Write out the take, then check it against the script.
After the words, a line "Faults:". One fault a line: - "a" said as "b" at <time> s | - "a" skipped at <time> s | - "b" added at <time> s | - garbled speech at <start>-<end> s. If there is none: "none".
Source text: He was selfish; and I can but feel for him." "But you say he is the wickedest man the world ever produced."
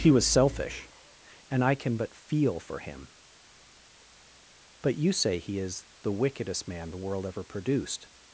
He was selfish; and I can but feel for him." "But you say he is the wickedest man the world ever produced."
Faults:
none